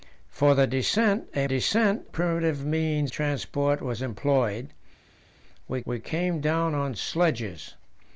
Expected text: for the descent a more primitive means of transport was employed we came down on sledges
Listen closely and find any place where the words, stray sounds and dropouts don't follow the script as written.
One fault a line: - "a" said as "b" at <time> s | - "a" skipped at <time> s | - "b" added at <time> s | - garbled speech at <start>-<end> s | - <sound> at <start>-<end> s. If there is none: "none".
- "more" said as "descent" at 1.4 s
- "of" skipped at 3.1 s
- "we" added at 5.8 s